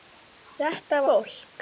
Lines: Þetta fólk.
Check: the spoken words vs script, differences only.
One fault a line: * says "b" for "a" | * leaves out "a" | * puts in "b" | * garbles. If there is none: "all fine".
all fine